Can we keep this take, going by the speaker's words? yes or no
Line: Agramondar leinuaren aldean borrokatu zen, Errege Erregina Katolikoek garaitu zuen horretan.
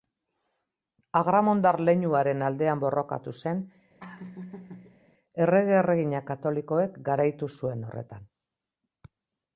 yes